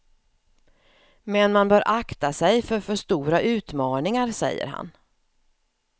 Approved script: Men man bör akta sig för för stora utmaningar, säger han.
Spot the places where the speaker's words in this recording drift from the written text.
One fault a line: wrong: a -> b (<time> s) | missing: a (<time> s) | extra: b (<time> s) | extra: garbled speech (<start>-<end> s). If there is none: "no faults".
no faults